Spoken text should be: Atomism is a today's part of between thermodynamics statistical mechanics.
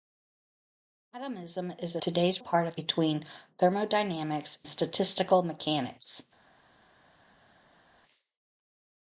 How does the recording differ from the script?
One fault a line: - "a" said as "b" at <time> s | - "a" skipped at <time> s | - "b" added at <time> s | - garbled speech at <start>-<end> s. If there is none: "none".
none